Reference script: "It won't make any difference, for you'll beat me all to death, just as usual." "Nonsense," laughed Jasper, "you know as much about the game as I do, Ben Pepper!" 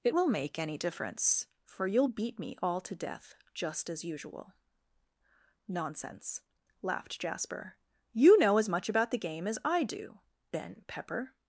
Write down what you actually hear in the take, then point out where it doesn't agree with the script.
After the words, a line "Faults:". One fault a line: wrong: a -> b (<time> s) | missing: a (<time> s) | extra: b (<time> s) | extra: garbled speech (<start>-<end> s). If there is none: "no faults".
"It will make any difference, for you'll beat me all to death, just as usual." "Nonsense," laughed Jasper, "you know as much about the game as I do, Ben Pepper!"
Faults:
wrong: won't -> will (0.1 s)